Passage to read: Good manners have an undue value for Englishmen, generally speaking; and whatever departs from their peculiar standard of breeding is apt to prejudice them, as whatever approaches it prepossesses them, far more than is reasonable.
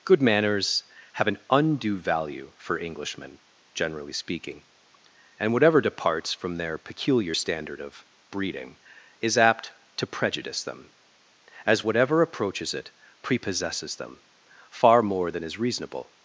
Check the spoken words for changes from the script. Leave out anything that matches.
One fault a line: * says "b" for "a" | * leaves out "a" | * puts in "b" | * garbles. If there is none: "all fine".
all fine